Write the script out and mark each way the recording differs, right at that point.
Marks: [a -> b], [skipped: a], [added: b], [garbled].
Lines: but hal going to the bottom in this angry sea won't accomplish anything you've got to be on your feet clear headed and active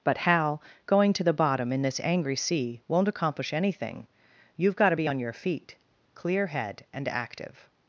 but hal going to the bottom in this angry sea won't accomplish anything you've got to be on your feet clear [headed -> head] and active